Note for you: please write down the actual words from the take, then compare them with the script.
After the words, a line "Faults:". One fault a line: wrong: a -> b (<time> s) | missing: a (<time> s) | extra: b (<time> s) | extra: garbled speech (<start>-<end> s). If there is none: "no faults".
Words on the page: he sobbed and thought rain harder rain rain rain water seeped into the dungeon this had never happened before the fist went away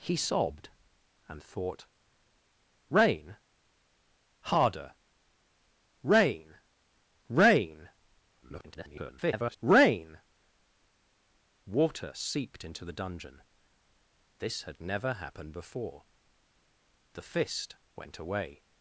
he sobbed and thought rain harder rain rain [garbled] rain water seeped into the dungeon this had never happened before the fist went away
Faults:
extra: garbled speech (8.4-9.6 s)